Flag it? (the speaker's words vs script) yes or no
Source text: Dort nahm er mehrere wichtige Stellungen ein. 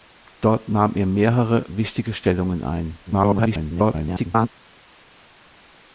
yes